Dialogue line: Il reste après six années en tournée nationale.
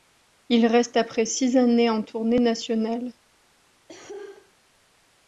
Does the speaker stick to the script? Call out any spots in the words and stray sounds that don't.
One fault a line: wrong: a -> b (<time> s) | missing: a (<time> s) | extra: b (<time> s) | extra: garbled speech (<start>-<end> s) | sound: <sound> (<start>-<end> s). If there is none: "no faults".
sound: cough (3.9-4.5 s)